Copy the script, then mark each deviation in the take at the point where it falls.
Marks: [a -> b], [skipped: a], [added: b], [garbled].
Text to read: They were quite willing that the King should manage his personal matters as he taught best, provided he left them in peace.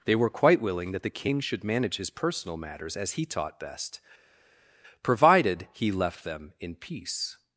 They were quite willing that the King should manage his personal matters as he taught best, provided he left them in peace.